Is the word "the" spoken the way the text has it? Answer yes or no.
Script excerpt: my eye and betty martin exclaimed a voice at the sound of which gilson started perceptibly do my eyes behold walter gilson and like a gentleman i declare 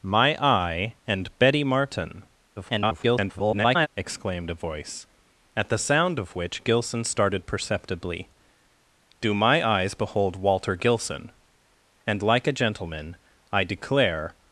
yes